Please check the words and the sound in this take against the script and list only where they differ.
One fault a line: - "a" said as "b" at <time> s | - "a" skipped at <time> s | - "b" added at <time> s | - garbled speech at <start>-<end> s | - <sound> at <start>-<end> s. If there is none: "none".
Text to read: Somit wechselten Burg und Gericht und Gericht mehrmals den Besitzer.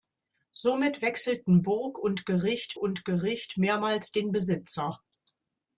none